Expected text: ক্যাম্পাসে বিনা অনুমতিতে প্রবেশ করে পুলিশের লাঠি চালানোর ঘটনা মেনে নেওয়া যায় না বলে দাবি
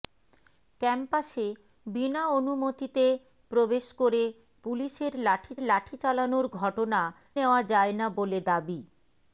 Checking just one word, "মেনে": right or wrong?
wrong